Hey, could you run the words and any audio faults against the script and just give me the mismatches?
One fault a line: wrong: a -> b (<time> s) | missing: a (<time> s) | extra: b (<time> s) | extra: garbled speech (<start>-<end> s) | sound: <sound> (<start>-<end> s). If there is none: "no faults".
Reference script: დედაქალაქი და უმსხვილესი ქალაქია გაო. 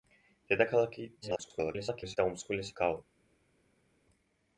extra: garbled speech (1.2-2.2 s)
missing: ქალაქია (2.8 s)